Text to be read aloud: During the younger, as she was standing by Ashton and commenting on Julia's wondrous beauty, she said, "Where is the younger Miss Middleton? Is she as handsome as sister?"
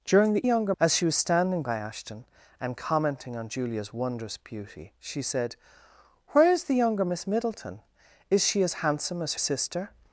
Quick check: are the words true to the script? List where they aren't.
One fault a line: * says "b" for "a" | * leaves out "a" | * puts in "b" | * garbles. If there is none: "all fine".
all fine